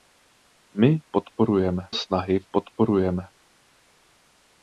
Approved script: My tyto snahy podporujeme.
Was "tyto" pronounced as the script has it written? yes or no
no